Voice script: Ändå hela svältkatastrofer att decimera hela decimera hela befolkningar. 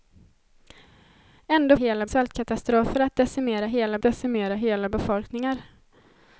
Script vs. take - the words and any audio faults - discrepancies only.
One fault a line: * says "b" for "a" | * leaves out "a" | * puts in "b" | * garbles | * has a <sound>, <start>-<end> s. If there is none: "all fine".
all fine